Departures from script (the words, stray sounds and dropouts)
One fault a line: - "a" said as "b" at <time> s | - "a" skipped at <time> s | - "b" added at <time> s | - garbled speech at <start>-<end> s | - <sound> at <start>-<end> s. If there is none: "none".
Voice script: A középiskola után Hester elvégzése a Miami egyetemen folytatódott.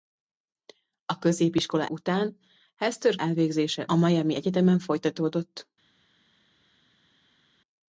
none